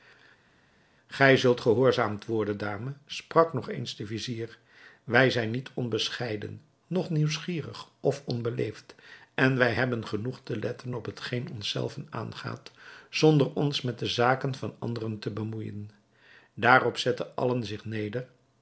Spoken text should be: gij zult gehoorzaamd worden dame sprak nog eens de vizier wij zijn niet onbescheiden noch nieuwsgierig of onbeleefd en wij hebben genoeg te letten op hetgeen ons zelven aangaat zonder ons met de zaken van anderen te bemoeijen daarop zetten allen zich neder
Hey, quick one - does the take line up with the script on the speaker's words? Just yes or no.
yes